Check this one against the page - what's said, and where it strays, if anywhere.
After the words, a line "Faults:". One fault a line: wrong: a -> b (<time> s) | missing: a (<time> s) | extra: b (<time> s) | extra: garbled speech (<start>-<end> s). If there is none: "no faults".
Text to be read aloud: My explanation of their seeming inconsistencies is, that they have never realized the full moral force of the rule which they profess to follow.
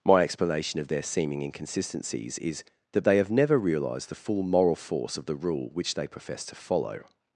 My explanation of their seeming inconsistencies is, that they have never realized the full moral force of the rule which they profess to follow.
Faults:
no faults